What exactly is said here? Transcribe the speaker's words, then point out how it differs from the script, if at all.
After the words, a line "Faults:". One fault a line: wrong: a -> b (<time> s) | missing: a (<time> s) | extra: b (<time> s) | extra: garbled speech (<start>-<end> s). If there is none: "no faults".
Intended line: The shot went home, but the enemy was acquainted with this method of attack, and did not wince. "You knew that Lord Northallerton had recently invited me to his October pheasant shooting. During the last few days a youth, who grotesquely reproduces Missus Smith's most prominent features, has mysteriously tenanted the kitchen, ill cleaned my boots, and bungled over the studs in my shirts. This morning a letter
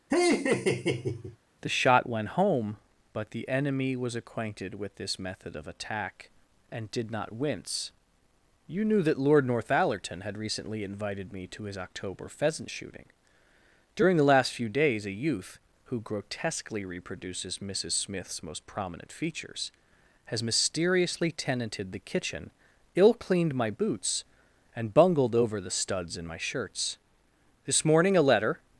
The shot went home, but the enemy was acquainted with this method of attack, and did not wince. "You knew that Lord Northallerton had recently invited me to his October pheasant shooting. During the last few days a youth, who grotesquely reproduces Missus Smith's most prominent features, has mysteriously tenanted the kitchen, ill cleaned my boots, and bungled over the studs in my shirts. This morning a letter
Faults:
no faults